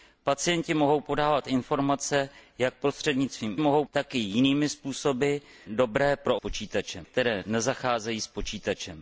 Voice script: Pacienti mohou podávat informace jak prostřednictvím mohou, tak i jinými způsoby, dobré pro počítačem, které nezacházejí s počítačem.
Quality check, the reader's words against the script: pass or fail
pass